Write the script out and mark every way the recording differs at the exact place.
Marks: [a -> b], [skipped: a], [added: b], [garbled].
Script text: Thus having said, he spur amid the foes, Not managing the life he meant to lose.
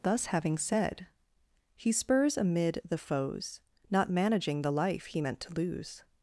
Thus having said, he [spur -> spurs] amid the foes, Not managing the life he meant to lose.